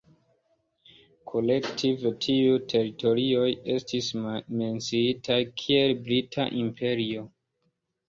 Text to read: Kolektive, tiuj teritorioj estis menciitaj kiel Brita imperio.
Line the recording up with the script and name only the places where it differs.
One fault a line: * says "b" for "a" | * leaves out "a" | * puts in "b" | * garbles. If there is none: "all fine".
all fine